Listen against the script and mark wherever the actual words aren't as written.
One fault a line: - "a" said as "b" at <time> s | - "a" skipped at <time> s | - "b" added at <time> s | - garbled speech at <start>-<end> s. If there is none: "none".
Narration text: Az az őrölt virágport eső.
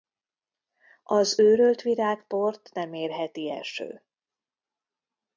- "az" skipped at 1.4 s
- "nem érheti" added at 2.7 s